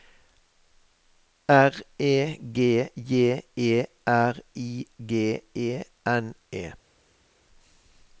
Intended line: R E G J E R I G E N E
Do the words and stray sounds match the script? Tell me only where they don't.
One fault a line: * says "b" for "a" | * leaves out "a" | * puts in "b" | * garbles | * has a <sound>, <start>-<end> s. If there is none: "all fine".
all fine